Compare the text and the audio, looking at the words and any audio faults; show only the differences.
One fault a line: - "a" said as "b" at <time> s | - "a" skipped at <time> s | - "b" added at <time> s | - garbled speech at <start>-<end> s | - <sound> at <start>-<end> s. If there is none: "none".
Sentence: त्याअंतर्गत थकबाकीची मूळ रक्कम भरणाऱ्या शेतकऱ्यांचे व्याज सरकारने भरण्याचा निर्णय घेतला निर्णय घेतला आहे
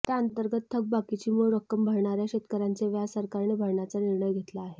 - "निर्णय घेतला" skipped at 4.6 s